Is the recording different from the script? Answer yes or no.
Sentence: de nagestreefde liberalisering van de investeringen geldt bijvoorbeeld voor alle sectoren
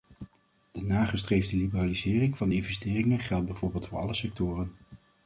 no